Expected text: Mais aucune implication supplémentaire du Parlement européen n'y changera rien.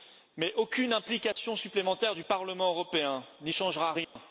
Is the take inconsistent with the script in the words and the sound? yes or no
yes